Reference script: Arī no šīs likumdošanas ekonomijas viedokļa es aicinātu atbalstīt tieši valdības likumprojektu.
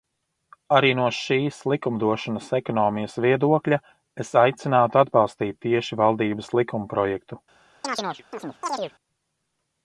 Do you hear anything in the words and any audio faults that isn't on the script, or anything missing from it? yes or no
yes